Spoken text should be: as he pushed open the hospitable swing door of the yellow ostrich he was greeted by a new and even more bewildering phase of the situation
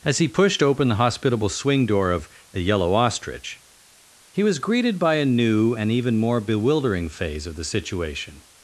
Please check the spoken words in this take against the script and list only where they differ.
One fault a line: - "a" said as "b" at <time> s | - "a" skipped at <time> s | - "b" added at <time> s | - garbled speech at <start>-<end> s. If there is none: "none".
none